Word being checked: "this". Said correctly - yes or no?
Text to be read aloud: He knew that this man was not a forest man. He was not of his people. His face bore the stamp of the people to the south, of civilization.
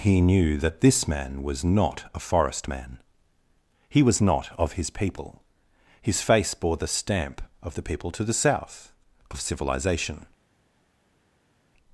yes